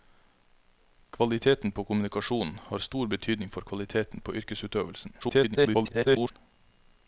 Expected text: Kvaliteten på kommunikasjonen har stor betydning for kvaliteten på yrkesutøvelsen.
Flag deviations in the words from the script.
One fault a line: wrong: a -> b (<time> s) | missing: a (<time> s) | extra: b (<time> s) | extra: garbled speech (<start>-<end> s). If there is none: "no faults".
extra: garbled speech (5.2-6.3 s)